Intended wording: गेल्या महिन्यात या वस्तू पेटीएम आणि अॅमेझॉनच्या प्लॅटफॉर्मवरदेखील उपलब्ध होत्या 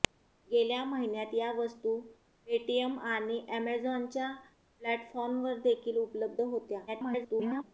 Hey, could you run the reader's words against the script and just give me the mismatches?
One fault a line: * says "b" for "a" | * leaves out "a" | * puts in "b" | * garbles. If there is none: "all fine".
* garbles